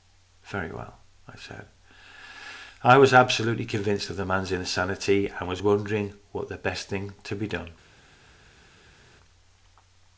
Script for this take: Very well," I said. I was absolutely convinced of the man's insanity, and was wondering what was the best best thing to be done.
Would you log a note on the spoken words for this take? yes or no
yes